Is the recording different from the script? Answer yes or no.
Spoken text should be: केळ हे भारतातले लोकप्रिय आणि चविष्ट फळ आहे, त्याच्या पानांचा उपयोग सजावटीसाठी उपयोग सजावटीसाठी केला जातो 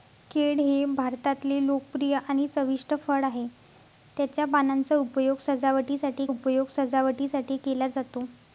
no